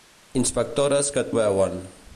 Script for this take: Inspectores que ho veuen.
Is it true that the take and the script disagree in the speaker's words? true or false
false